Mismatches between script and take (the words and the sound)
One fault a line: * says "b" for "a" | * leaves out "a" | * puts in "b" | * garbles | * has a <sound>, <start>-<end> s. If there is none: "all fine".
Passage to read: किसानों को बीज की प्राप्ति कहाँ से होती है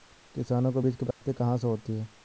* has a dropout, 1.1-1.2 s